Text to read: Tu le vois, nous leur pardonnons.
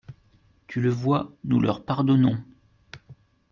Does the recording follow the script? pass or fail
pass